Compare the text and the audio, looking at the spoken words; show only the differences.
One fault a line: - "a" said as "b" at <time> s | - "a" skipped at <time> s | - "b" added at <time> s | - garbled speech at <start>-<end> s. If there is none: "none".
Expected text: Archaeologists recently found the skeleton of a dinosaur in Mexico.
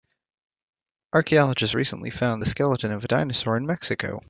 none